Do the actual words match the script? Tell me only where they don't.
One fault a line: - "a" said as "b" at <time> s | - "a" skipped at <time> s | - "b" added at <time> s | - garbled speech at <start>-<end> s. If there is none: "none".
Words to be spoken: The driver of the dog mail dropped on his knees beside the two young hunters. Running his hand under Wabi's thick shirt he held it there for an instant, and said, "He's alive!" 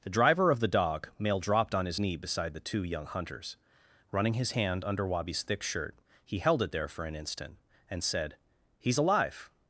- "knees" said as "knee" at 2.0 s